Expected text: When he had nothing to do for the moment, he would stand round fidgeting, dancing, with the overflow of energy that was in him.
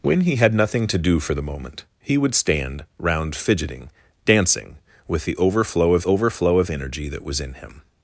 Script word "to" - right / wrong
right